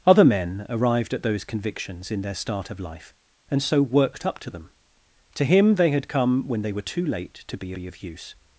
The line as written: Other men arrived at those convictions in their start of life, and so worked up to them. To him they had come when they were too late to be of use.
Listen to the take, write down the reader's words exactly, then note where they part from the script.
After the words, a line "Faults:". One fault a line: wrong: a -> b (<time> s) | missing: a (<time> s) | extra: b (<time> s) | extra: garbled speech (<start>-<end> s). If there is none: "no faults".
Other men arrived at those convictions in their start of life, and so worked up to them. To him they had come when they were too late to be be of use.
Faults:
extra: be (7.7 s)